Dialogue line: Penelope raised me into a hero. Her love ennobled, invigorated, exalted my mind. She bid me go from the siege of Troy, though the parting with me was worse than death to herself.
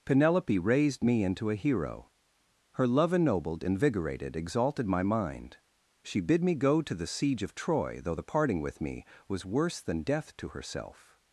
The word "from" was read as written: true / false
false